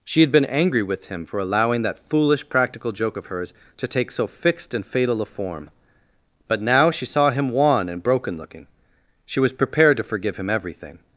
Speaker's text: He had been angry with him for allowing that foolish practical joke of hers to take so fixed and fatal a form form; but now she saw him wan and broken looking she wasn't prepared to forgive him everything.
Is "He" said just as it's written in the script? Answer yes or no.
no